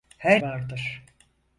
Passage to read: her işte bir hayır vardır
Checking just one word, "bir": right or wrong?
wrong